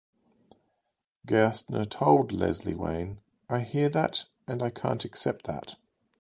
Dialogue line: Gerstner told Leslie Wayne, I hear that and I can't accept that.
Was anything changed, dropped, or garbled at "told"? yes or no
no